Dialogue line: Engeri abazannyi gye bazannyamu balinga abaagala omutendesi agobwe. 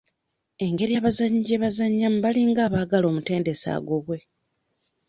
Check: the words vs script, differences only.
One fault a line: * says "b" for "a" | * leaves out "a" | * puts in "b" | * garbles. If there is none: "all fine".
all fine